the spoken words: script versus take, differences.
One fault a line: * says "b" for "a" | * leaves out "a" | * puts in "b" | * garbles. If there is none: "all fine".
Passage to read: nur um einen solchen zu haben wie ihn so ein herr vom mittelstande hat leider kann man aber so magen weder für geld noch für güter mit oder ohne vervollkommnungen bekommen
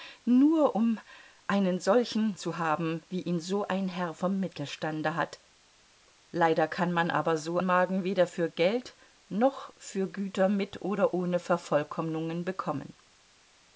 all fine